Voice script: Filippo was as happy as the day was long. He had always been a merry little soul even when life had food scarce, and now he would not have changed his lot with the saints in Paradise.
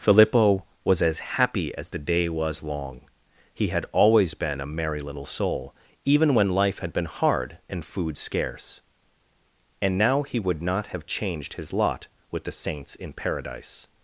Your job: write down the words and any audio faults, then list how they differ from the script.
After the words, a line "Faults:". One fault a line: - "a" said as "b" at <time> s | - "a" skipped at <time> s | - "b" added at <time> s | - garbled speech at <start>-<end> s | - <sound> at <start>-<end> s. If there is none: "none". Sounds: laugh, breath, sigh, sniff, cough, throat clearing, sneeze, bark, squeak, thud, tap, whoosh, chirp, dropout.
Filippo was as happy as the day was long. He had always been a merry little soul even when life had been hard and food scarce, and now he would not have changed his lot with the saints in Paradise.
Faults:
- "been hard and" added at 6.9 s